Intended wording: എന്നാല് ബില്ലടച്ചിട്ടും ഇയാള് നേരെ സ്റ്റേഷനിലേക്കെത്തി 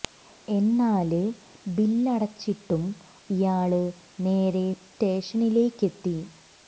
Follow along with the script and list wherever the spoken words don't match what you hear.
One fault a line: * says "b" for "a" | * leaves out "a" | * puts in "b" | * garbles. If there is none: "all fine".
all fine